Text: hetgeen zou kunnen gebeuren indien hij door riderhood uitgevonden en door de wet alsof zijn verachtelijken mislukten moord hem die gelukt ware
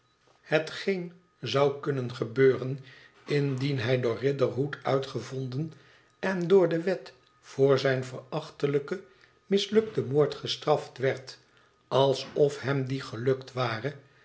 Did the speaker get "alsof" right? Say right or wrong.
wrong